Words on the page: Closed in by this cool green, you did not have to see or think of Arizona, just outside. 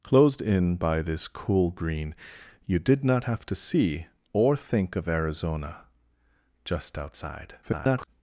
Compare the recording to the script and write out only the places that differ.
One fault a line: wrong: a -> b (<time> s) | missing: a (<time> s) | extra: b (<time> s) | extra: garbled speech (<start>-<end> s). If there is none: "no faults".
extra: garbled speech (7.6-8.1 s)